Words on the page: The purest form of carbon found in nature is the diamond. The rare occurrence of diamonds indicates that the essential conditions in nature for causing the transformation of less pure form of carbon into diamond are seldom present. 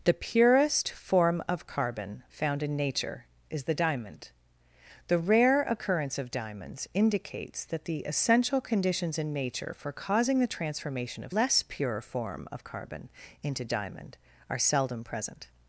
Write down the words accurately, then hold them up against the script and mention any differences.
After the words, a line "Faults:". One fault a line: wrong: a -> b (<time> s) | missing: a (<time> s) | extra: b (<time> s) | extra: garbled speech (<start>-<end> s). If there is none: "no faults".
The purest form of carbon found in nature is the diamond. The rare occurrence of diamonds indicates that the essential conditions in nature for causing the transformation of less pure form of carbon into diamond are seldom present.
Faults:
no faults